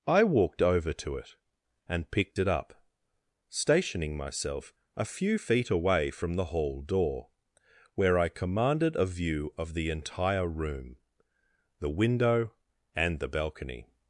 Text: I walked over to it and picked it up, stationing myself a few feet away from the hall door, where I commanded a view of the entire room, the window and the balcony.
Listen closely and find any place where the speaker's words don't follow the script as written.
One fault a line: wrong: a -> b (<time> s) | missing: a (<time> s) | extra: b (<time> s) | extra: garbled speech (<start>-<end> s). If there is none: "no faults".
no faults